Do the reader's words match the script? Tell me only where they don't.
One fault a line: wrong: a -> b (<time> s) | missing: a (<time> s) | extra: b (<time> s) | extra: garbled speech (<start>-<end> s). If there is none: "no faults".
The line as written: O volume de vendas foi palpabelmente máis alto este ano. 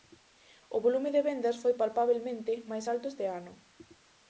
no faults